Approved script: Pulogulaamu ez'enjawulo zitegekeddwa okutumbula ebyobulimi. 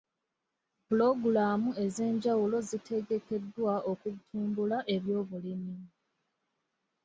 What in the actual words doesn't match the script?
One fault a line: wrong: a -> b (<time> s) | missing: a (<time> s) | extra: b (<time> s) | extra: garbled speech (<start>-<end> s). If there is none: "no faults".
no faults